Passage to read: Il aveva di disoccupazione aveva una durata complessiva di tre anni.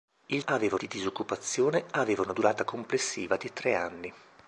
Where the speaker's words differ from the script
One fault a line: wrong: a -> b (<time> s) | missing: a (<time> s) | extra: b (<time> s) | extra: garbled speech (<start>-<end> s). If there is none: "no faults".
no faults